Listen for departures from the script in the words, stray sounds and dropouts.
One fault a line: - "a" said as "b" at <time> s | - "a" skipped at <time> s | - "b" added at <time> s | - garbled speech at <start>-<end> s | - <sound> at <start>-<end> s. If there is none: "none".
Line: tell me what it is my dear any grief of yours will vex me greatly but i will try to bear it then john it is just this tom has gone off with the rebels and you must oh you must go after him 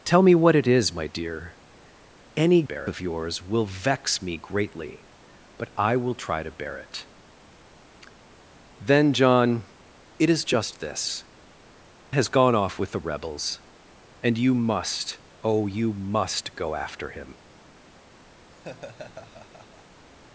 - "grief" said as "bear" at 2.6 s
- "tom" skipped at 11.2 s
- laugh at 18.5-20.0 s